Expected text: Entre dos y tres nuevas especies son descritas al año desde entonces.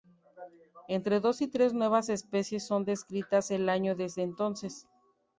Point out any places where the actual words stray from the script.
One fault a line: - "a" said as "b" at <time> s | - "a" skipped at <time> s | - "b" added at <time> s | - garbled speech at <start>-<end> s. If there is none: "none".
none